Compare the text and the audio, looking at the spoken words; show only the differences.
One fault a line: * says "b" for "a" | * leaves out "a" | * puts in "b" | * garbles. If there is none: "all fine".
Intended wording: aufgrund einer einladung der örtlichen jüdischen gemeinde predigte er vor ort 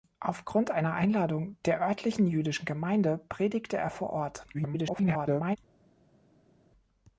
* garbles